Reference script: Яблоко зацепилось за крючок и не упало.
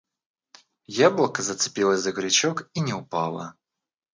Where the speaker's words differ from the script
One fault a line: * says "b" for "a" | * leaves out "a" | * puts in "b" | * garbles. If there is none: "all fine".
all fine